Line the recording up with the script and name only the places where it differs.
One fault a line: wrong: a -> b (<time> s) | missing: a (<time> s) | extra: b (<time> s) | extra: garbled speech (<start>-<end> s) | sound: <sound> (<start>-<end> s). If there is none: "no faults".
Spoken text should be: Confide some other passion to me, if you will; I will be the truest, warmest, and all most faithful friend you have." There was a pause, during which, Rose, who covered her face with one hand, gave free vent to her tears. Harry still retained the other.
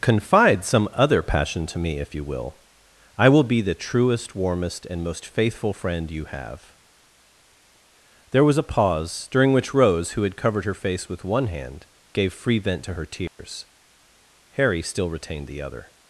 missing: all (5.0 s)
extra: had (10.2 s)
sound: dropout (13.3-13.4 s)